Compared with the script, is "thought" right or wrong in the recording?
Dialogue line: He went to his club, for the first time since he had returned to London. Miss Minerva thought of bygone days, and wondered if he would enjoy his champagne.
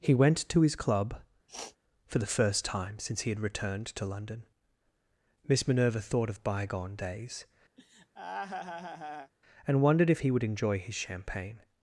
right